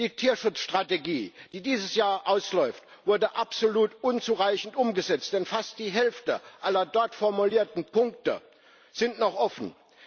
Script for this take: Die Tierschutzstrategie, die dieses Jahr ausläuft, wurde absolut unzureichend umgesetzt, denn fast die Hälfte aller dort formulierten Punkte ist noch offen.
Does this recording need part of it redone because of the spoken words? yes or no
no